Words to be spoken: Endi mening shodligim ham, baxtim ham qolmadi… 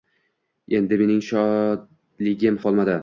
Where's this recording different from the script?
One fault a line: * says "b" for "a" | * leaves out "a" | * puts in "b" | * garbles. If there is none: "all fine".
* leaves out "ham baxtim ham"